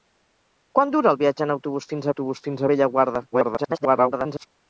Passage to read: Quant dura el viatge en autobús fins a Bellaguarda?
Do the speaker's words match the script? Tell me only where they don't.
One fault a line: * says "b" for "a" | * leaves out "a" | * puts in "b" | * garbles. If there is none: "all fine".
* puts in "autobús fins"
* garbles